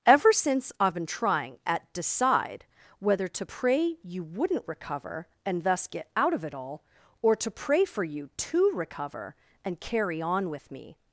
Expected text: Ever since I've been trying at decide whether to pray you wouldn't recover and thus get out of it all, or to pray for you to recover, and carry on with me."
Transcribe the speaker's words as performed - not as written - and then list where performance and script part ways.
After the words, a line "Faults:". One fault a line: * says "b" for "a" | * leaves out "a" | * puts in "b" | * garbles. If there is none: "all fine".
Ever since I've been trying at decide whether to pray you wouldn't recover and thus get out of it all, or to pray for you to recover, and carry on with me."
Faults:
all fine